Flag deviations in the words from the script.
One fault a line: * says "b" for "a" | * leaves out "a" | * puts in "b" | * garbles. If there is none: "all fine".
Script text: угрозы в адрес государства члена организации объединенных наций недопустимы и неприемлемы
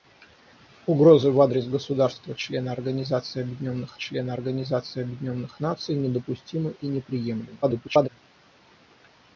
* puts in "члена организации объединенных"
* garbles